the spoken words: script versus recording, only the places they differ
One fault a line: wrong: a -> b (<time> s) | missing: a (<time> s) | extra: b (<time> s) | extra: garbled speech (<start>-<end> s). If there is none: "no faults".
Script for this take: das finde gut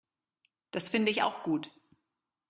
extra: ich auch (1.1 s)